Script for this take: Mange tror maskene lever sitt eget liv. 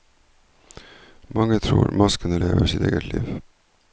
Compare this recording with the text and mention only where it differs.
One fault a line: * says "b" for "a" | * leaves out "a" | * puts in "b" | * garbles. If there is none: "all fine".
all fine